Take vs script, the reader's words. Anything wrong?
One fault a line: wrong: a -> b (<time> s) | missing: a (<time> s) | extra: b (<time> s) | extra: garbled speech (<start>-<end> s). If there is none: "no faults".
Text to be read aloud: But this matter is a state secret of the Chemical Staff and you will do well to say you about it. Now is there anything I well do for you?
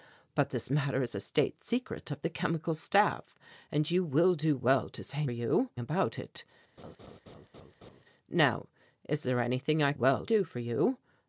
no faults